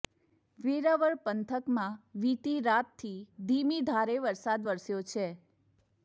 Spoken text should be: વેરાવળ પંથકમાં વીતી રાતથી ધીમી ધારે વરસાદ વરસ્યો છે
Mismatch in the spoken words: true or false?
false